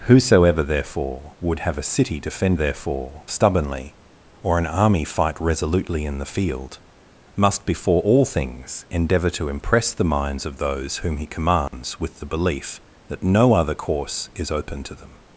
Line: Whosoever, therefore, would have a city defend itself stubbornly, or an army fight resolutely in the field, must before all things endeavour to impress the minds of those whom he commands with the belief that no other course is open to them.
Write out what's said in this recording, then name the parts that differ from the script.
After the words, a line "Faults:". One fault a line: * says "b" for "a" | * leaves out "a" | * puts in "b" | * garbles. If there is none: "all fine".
Whosoever, therefore, would have a city defend therefore stubbornly, or an army fight resolutely in the field, must before all things endeavour to impress the minds of those whom he commands with the belief that no other course is open to them.
Faults:
* says "therefore" for "itself"